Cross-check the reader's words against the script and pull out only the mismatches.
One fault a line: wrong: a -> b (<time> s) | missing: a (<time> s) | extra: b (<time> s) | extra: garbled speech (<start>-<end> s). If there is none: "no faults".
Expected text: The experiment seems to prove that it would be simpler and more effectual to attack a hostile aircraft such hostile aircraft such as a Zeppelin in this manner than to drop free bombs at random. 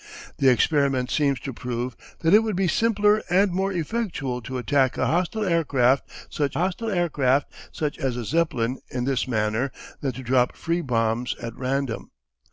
no faults